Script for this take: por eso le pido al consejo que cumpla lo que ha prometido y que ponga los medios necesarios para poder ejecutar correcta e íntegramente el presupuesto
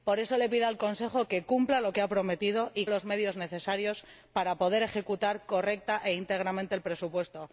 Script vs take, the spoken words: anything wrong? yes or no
yes